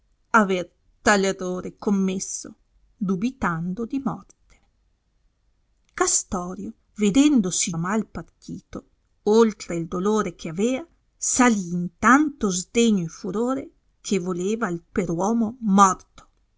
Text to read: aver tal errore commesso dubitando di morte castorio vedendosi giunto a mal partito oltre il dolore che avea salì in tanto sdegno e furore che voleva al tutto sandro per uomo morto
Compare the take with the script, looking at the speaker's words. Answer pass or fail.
fail